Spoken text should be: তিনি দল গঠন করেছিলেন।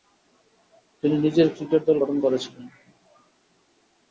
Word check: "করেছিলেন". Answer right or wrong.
right